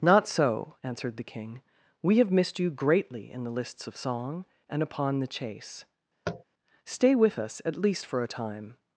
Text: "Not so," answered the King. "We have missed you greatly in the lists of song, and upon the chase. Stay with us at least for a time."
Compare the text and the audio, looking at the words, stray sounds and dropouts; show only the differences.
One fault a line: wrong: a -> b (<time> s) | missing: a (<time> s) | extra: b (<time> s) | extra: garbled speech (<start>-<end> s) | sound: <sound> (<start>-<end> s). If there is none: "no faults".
sound: tap (6.3-6.4 s)